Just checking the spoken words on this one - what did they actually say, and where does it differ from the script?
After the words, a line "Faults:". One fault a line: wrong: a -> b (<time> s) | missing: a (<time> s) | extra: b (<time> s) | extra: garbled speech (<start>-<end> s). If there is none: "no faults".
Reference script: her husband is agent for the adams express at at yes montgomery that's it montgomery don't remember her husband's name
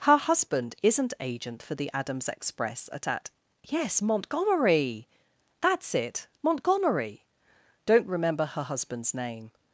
her husband isn't agent for the adams express at at yes montgomery that's it montgomery don't remember her husband's name
Faults:
wrong: is -> isn't (0.8 s)